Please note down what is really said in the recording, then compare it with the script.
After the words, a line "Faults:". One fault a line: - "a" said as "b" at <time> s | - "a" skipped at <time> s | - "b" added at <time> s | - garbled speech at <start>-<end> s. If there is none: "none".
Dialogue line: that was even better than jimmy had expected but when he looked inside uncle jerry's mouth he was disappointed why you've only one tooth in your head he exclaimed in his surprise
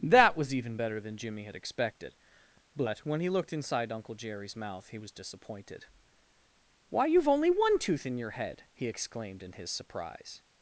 that was even better than jimmy had expected but when he looked inside uncle jerry's mouth he was disappointed why you've only one tooth in your head he exclaimed in his surprise
Faults:
none